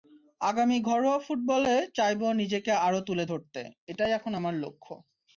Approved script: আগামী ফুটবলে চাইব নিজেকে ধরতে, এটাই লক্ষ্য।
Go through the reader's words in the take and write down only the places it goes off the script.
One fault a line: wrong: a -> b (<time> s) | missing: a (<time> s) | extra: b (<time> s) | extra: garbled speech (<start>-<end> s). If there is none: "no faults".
extra: ঘরোয়া (0.8 s)
extra: আরও তুলে (2.8 s)
extra: এখন আমার (4.1 s)